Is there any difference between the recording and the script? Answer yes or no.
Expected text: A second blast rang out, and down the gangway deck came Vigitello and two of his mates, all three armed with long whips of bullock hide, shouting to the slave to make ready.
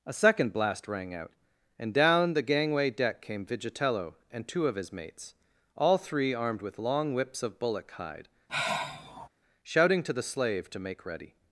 no